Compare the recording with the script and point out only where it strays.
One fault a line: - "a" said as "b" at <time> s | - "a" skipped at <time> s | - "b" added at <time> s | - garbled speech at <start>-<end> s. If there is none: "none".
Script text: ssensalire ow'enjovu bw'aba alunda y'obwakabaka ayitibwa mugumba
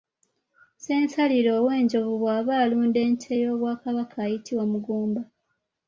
- "ente" added at 3.1 s